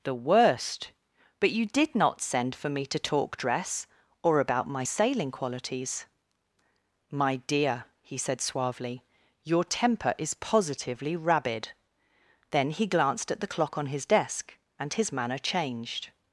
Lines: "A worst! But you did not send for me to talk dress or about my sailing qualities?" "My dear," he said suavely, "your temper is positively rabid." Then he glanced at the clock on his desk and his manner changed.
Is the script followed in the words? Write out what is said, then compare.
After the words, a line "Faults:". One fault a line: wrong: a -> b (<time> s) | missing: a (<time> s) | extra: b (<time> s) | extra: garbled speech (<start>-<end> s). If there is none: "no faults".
"The worst! But you did not send for me to talk dress or about my sailing qualities?" "My dear," he said suavely, "your temper is positively rabid." Then he glanced at the clock on his desk and his manner changed.
Faults:
wrong: A -> The (0.0 s)